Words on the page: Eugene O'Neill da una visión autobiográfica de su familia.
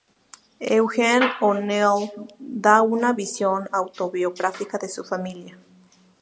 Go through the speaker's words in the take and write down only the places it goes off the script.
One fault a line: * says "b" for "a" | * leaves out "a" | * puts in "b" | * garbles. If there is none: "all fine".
all fine